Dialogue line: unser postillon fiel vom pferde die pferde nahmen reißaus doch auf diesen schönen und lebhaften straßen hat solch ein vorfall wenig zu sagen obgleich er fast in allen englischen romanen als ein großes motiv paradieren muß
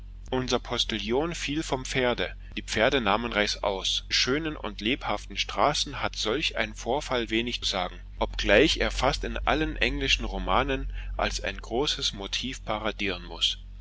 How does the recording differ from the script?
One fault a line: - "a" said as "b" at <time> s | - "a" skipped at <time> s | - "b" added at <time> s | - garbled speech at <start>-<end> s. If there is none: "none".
- "doch auf diesen" skipped at 4.1 s
- "zu" skipped at 7.6 s